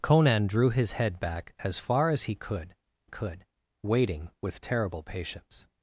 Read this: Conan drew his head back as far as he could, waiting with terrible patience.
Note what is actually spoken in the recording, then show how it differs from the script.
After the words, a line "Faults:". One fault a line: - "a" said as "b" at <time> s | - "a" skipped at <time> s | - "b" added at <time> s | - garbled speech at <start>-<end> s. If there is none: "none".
Conan drew his head back as far as he could could, waiting with terrible patience.
Faults:
- "could" added at 3.0 s